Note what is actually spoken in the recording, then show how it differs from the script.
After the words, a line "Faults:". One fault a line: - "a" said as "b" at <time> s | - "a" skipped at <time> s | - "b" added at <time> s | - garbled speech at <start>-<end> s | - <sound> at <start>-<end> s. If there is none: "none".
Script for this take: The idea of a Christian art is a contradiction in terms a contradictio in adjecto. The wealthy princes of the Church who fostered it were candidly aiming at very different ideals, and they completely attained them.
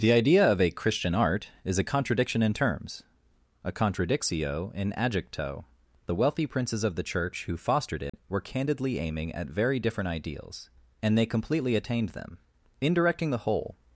The idea of a Christian art is a contradiction in terms a contradictio in adjecto. The wealthy princes of the Church who fostered it were candidly aiming at very different ideals, and they completely attained them. In directing the whole
Faults:
- dropout at 8.1-8.1 s
- "In directing the whole" added at 12.8 s